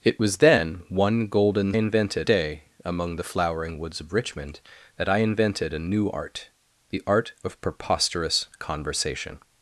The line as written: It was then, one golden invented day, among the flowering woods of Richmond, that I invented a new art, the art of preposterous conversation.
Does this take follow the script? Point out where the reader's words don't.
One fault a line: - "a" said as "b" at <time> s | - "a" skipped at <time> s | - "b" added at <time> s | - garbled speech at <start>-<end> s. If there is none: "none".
none